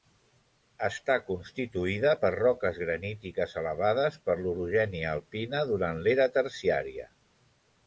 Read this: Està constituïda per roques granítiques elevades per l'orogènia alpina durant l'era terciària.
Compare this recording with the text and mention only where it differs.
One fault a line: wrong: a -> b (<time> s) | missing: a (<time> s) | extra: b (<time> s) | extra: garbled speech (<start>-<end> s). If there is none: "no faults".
no faults